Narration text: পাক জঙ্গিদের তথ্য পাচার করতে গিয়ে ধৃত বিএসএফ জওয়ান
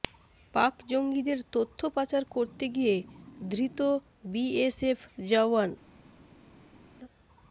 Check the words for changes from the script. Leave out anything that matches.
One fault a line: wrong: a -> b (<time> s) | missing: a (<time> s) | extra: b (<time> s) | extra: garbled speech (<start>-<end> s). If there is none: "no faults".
no faults